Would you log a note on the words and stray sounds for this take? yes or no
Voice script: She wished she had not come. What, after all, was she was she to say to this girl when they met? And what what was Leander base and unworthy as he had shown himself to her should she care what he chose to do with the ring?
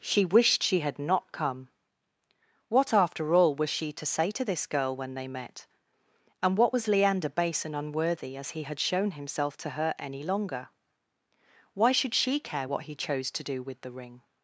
yes